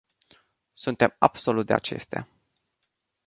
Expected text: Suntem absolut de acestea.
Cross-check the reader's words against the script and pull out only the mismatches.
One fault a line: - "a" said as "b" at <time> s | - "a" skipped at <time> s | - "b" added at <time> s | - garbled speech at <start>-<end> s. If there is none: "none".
none